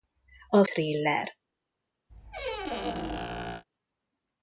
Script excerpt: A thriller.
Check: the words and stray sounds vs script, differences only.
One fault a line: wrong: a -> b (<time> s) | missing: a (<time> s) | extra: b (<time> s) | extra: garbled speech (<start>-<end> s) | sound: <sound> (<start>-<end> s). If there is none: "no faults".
sound: squeak (2.1-3.6 s)